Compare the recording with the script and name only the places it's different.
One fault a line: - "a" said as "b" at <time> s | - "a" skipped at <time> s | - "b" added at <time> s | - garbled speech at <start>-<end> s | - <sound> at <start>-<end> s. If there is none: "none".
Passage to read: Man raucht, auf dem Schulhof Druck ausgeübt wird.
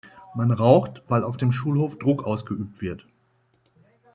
- "weil" added at 1.1 s